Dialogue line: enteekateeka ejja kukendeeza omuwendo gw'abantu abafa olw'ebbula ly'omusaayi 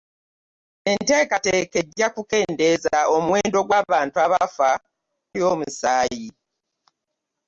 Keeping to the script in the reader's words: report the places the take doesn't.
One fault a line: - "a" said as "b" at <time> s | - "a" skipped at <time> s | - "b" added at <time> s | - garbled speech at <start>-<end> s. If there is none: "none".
- "olw'ebbula" skipped at 4.7 s